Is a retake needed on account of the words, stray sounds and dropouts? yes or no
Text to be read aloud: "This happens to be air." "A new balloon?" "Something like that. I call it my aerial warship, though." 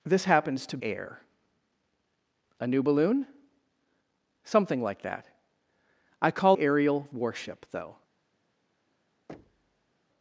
yes